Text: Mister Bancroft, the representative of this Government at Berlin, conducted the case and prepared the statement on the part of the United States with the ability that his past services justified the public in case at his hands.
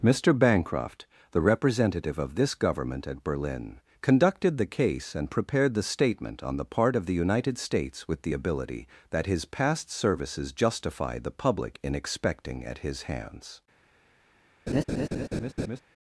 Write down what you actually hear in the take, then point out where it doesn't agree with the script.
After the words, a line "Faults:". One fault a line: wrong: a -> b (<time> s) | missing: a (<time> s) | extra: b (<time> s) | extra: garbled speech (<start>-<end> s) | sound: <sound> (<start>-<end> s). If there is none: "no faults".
Mister Bancroft, the representative of this Government at Berlin, conducted the case and prepared the statement on the part of the United States with the ability that his past services justified the public in expecting at his hands.
Faults:
wrong: case -> expecting (12.0 s)
sound: laugh (14.7-15.8 s)